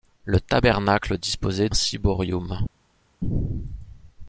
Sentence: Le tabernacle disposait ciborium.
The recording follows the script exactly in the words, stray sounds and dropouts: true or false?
true